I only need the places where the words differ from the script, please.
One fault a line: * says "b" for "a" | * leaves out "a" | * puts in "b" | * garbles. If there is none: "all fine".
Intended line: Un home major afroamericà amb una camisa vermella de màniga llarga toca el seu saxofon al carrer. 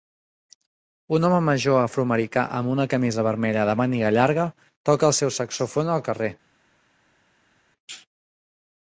all fine